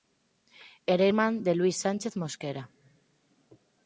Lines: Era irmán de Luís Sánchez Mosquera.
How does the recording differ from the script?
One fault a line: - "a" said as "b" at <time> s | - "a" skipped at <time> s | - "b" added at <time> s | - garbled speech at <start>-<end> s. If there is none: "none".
none